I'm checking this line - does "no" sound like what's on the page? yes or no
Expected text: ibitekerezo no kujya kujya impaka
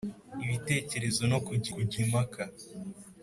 yes